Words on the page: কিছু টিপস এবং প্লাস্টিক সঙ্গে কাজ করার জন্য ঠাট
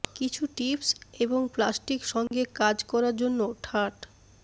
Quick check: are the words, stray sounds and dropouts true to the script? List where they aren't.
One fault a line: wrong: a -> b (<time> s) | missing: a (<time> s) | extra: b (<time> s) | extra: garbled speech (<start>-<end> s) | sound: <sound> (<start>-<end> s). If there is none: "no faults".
sound: dropout (2.3-2.3 s)